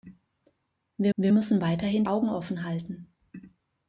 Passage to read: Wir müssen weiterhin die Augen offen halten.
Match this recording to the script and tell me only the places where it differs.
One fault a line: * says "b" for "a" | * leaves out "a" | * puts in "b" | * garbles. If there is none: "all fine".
* puts in "wir"
* leaves out "die"